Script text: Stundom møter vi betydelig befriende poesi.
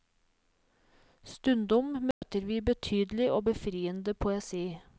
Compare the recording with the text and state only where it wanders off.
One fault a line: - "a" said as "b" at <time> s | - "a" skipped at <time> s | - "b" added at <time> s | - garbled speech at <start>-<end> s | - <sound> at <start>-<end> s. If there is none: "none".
- dropout at 2.1-2.2 s
- "og" added at 3.3 s